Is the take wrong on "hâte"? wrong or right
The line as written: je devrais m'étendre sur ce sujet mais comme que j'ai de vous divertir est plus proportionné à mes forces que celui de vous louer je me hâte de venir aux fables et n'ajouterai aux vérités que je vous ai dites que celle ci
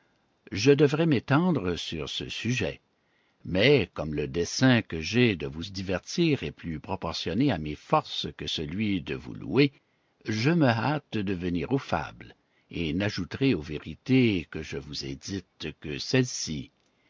right